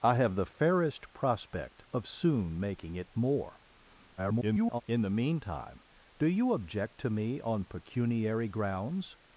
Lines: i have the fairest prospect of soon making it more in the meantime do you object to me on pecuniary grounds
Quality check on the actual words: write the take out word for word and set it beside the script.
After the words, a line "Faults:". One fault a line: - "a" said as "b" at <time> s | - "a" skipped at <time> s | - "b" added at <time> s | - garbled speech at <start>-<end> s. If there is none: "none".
i have the fairest prospect of soon making it more [garbled] in the meantime do you object to me on pecuniary grounds
Faults:
- garbled speech at 4.2-4.8 s